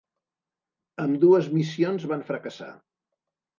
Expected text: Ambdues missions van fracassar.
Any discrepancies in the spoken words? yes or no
no